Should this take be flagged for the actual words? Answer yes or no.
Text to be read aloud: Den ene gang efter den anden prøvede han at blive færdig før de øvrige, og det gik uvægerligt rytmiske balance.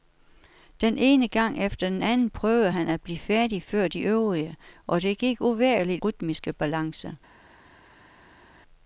no